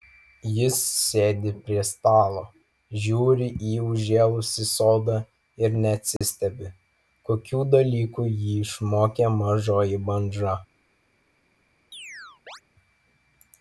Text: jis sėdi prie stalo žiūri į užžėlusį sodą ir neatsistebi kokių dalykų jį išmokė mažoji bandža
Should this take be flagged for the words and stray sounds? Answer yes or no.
yes